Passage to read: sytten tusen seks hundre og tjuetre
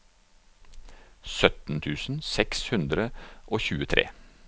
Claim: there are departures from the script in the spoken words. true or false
false